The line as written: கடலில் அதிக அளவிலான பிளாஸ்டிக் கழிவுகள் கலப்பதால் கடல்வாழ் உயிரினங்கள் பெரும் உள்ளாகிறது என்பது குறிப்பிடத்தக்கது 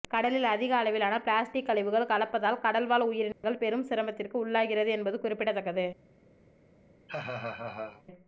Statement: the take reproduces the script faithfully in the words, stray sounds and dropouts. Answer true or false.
false